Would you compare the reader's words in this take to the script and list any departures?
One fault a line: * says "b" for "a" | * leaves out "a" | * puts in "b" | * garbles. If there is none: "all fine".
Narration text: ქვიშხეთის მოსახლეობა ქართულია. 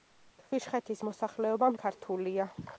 all fine